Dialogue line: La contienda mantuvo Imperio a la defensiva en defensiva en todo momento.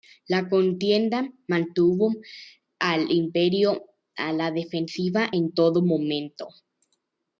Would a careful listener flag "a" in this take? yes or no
no